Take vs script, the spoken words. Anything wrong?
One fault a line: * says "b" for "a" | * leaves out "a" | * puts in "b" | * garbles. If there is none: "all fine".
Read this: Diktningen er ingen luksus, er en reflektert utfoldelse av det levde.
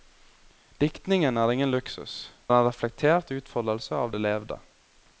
all fine